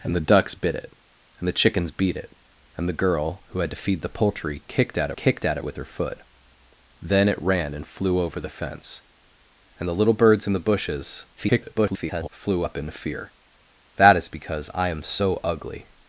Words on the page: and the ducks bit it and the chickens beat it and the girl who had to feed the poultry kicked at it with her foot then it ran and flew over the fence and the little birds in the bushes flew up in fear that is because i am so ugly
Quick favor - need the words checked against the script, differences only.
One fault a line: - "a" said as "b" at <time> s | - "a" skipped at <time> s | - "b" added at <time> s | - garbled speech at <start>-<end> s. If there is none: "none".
- "kicked at" added at 5.2 s
- garbled speech at 11.4-12.3 s